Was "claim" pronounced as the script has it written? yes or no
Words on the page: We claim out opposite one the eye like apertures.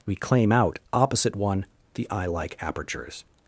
yes